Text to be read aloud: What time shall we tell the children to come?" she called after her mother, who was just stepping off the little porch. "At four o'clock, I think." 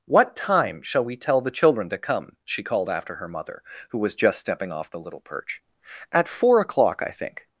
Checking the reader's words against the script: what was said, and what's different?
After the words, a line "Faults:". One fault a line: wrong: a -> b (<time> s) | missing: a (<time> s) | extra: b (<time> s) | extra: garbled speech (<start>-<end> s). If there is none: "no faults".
What time shall we tell the children to come?" she called after her mother, who was just stepping off the little perch. "At four o'clock, I think."
Faults:
wrong: porch -> perch (5.2 s)